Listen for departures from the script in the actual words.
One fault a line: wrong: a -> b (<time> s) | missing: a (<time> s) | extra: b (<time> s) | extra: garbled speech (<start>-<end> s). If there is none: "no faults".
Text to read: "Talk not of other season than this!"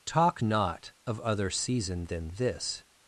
no faults